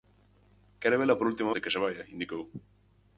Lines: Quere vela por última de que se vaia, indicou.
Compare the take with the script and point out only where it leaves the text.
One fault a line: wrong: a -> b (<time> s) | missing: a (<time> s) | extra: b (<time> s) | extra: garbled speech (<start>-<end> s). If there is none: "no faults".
no faults